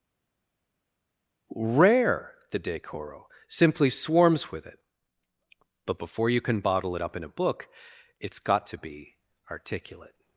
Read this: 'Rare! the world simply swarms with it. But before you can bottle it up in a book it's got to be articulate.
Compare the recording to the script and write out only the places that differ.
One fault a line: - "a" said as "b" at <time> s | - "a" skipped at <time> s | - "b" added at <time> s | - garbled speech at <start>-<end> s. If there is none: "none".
- "world" said as "decoro" at 2.6 s